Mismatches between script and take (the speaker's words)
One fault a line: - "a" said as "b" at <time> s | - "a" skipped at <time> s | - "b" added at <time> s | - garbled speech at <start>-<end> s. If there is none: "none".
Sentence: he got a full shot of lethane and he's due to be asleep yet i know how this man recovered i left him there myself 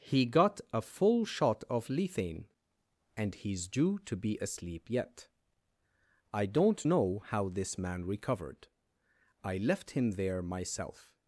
- "don't" added at 6.5 s